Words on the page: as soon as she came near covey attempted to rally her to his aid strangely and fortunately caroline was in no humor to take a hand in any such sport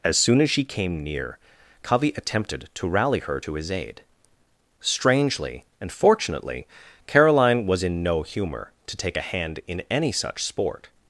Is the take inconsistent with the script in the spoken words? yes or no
no